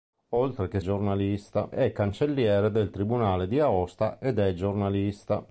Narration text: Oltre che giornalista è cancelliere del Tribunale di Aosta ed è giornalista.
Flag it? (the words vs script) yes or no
no